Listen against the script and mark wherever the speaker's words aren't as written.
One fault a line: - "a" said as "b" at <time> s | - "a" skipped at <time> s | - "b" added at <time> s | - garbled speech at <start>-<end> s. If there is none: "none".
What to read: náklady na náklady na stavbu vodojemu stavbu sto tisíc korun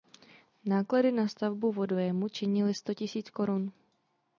- "náklady na" skipped at 1.3 s
- "stavbu" said as "činily" at 2.3 s